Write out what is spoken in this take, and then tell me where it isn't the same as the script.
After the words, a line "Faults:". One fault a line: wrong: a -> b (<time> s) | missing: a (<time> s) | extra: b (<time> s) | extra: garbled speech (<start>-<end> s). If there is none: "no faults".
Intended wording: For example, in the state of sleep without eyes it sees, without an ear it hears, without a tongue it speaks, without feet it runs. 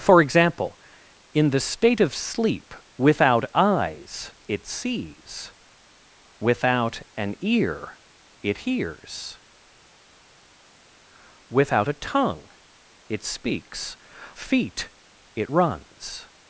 For example, in the state of sleep without eyes it sees, without an ear it hears, without a tongue it speaks, feet it runs.
Faults:
missing: without (14.0 s)